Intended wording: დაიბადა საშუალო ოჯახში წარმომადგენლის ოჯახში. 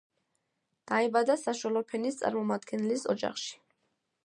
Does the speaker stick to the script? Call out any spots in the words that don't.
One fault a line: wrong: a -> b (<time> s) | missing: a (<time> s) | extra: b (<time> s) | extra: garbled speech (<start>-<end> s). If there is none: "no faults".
wrong: ოჯახში -> ფენის (1.9 s)